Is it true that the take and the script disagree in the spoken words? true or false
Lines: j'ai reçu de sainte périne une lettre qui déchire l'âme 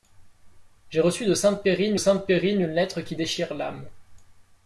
true